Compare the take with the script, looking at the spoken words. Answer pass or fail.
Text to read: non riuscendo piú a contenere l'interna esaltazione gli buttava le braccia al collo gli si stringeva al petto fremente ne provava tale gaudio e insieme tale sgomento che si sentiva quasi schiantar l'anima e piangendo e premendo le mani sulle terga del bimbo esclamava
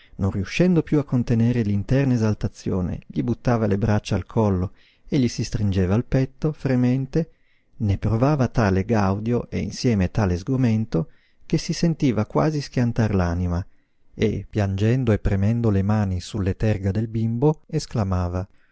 fail